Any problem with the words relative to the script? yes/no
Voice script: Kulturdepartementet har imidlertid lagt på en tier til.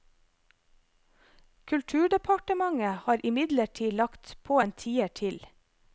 no